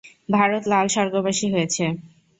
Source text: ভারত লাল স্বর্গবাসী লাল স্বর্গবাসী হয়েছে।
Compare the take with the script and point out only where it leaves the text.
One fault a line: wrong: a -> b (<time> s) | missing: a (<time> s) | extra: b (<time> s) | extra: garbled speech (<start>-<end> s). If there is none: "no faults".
missing: লাল স্বর্গবাসী (1.5 s)